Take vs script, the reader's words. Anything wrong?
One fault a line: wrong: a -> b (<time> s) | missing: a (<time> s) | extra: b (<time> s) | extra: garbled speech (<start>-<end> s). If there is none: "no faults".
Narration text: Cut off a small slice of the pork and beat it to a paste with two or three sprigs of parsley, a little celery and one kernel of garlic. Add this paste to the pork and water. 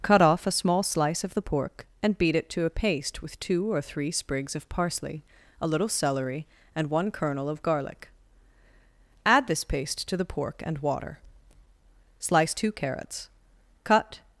extra: Slice two carrots cut (12.2 s)